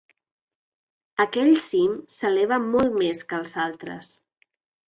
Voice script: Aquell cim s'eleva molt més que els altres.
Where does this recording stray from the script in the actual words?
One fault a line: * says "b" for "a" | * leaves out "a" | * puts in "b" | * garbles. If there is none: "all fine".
all fine